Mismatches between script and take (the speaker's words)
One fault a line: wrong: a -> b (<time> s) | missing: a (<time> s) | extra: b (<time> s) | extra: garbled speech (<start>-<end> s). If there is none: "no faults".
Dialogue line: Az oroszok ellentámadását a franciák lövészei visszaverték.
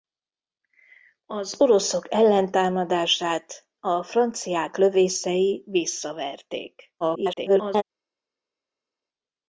extra: garbled speech (7.0-7.8 s)